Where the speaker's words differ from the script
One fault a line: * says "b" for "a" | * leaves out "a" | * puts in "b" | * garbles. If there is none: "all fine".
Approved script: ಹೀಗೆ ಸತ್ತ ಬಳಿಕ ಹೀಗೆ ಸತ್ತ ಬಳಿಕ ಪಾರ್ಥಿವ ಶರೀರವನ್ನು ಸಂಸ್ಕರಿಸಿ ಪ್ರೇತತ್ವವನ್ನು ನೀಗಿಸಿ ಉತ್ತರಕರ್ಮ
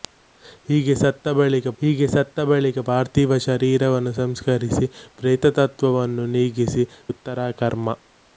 all fine